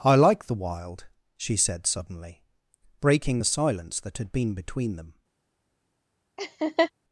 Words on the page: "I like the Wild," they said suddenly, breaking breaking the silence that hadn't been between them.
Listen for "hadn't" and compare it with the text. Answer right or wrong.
wrong